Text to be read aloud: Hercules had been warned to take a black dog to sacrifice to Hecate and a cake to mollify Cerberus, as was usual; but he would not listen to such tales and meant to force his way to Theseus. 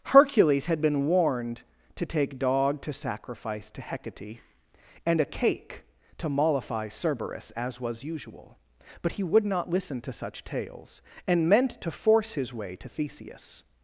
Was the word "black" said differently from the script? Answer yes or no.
yes